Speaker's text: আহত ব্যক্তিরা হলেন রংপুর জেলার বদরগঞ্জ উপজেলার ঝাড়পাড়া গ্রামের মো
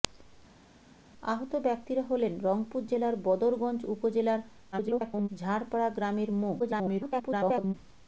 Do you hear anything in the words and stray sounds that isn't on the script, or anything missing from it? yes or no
yes